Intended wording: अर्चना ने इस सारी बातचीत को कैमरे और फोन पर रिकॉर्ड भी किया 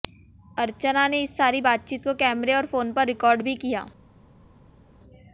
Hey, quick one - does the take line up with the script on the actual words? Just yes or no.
yes